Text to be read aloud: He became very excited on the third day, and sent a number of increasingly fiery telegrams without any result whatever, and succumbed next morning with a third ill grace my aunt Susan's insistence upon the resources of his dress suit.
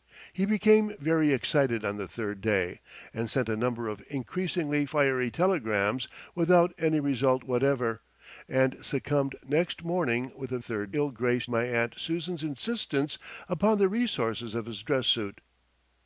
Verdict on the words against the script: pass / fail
pass